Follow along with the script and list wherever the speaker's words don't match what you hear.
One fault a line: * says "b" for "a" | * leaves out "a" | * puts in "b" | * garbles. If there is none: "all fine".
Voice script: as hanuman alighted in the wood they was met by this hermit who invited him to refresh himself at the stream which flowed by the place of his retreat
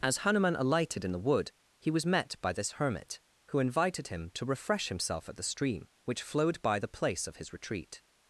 * says "he" for "they"